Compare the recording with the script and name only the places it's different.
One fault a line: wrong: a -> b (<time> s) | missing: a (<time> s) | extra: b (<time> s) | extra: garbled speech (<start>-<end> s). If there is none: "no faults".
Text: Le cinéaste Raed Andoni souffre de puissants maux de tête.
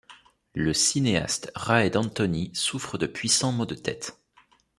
no faults